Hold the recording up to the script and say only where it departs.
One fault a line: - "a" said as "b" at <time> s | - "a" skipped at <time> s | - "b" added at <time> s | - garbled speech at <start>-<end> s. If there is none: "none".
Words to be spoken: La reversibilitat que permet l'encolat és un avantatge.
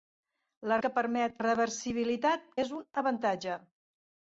- "reversibilitat" skipped at 0.8 s
- "l'encolat" said as "reversibilitat" at 1.4 s